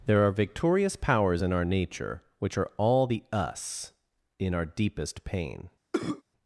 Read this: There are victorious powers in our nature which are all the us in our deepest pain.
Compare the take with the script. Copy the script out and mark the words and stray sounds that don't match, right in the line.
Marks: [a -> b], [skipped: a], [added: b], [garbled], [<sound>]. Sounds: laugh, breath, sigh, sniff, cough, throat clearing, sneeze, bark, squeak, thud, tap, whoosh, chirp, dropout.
There are victorious powers in our nature which are all the us in our deepest pain. [cough]